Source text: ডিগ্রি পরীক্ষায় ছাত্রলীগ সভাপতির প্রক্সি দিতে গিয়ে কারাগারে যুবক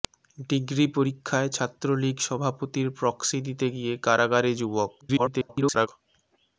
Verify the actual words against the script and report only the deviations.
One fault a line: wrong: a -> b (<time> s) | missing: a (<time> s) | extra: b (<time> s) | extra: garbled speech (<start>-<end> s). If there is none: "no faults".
extra: garbled speech (5.0-5.9 s)